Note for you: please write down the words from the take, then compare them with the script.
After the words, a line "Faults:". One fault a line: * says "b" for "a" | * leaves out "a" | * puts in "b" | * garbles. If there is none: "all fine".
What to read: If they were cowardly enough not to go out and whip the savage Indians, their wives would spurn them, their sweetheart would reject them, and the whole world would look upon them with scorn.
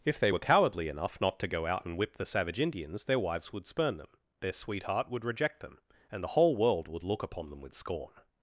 If they were cowardly enough not to go out and whip the savage Indians, their wives would spurn them, their sweetheart would reject them, and the whole world would look upon them with scorn.
Faults:
all fine